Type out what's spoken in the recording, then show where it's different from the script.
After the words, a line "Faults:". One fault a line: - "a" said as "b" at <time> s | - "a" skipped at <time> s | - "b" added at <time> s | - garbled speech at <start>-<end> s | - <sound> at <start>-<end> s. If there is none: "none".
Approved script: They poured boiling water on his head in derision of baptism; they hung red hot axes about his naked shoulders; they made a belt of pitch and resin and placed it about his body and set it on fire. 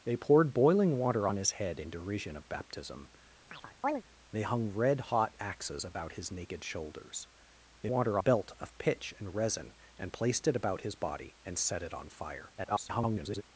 They poured boiling water on his head in derision of baptism; they hung red hot axes about his naked shoulders; they water a belt of pitch and resin and placed it about his body and set it on fire. [garbled]
Faults:
- chirp at 3.5-4.0 s
- "made" said as "water" at 7.9 s
- garbled speech at 12.6-13.4 s